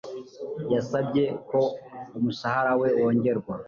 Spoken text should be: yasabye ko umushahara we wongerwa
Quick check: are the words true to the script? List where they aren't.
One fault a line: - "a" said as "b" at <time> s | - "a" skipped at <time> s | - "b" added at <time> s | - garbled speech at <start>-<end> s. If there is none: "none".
none